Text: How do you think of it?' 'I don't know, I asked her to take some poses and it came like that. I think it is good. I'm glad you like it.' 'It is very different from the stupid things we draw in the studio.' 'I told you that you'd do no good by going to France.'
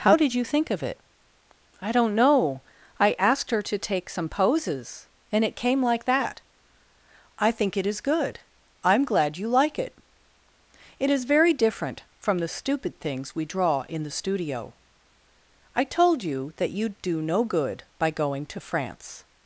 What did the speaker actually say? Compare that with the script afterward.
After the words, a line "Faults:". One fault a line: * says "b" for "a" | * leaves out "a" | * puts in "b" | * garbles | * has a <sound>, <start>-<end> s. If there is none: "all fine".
How did you think of it?' 'I don't know, I asked her to take some poses and it came like that. I think it is good. I'm glad you like it.' 'It is very different from the stupid things we draw in the studio.' 'I told you that you'd do no good by going to France.'
Faults:
* says "did" for "do"